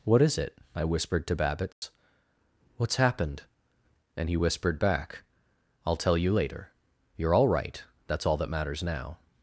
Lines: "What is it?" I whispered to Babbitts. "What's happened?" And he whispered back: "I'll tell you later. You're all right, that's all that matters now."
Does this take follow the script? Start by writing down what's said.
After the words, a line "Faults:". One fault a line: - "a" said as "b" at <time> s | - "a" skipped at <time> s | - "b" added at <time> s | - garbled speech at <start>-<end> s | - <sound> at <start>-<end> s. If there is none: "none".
"What is it?" I whispered to Babbitts. "What's happened?" And he whispered back: "I'll tell you later. You're all right, that's all that matters now."
Faults:
- dropout at 1.7-1.8 s